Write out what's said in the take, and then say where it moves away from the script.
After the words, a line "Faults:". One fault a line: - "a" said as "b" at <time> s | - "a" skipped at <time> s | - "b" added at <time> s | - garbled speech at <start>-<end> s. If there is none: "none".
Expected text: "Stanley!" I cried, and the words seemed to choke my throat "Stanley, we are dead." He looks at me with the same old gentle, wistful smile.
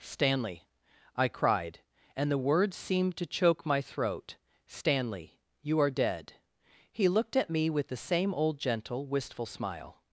"Stanley!" I cried, and the words seemed to choke my throat "Stanley, you are dead." He looked at me with the same old gentle, wistful smile.
Faults:
- "we" said as "you" at 5.6 s
- "looks" said as "looked" at 7.1 s